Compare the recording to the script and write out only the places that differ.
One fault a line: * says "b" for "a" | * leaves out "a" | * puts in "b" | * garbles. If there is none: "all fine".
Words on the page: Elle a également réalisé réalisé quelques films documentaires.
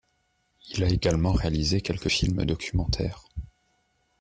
* says "Il" for "Elle"
* leaves out "réalisé"